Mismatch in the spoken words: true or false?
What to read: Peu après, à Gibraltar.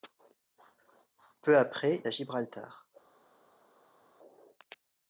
false